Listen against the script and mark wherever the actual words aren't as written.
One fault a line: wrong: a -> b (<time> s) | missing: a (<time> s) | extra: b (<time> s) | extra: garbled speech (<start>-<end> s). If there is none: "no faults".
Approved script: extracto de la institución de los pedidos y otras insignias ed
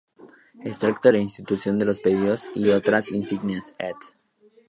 no faults